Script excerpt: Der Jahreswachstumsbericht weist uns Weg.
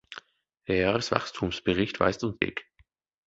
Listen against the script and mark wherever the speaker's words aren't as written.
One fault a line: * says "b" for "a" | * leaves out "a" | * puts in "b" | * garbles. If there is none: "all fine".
all fine